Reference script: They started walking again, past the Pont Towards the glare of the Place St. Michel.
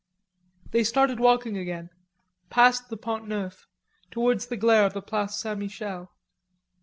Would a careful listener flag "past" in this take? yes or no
no